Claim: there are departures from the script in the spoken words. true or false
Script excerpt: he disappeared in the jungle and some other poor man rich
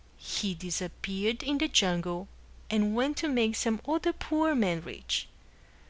true